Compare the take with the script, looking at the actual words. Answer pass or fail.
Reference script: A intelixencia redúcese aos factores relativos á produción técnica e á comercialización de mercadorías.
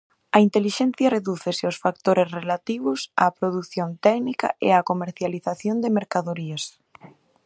pass